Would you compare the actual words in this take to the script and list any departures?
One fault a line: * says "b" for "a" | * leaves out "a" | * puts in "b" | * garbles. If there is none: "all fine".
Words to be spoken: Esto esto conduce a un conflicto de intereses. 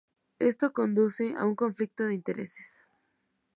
* leaves out "esto"